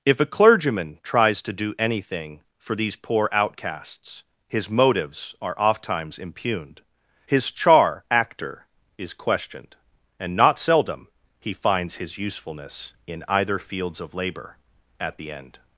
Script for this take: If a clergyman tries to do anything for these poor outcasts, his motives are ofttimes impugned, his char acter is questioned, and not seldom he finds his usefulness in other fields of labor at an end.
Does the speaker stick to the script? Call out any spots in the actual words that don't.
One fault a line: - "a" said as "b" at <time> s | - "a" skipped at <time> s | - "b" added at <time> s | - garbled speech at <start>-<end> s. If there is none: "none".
- "other" said as "either" at 13.3 s
- "an" said as "the" at 15.2 s